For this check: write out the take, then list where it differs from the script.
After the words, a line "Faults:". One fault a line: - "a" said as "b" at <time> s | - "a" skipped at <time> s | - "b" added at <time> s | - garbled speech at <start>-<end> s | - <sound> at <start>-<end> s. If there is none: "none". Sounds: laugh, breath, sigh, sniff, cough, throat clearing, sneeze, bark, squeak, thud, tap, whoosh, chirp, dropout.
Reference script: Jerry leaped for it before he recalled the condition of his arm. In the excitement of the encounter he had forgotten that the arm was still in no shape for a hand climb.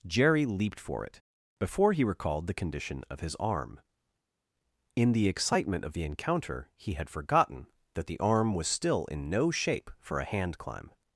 Jerry leaped for it before he recalled the condition of his arm. In the excitement of the encounter he had forgotten that the arm was still in no shape for a hand climb.
Faults:
none